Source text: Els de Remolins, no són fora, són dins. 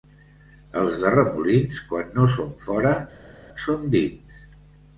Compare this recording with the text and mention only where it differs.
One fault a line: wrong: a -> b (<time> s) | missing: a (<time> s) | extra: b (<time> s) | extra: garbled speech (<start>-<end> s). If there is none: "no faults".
extra: quan (1.9 s)